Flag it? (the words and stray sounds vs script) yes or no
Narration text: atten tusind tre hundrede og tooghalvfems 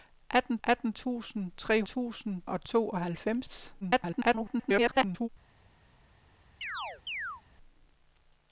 yes